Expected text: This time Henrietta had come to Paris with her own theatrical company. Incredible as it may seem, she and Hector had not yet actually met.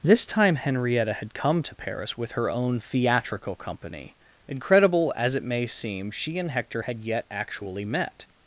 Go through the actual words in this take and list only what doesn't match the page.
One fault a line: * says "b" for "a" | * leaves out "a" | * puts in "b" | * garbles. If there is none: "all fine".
* leaves out "not"